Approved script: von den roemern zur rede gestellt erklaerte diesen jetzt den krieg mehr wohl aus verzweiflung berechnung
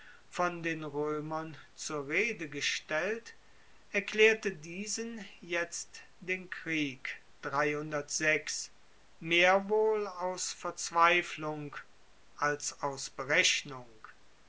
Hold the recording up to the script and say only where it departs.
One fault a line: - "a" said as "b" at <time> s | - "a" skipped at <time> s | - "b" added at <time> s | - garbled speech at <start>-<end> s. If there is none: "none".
- "als aus" added at 12.4 s